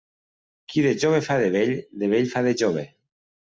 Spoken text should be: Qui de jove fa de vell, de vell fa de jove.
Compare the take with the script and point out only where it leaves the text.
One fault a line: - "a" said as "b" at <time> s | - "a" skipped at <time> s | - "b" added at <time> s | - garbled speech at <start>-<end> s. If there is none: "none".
none